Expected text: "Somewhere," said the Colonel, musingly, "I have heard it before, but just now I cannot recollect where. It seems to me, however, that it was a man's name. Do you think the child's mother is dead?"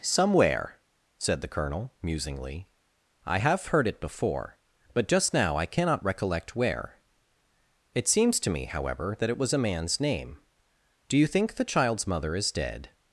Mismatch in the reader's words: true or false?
false